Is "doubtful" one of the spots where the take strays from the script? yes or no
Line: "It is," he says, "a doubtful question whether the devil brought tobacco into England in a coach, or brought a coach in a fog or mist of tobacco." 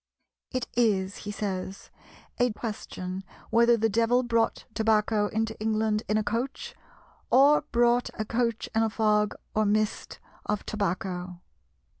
yes